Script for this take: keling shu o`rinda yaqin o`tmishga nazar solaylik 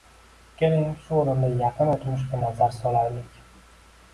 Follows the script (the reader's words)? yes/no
yes